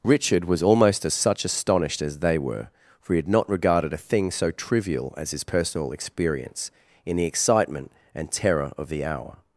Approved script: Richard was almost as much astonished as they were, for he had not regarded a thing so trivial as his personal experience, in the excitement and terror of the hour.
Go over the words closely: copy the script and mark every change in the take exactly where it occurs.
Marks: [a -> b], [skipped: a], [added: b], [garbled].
Richard was almost as [much -> such] astonished as they were, for he had not regarded a thing so trivial as his personal experience, in the excitement and terror of the hour.